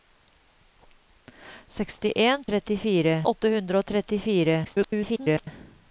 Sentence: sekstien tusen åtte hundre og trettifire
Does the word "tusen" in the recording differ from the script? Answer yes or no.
yes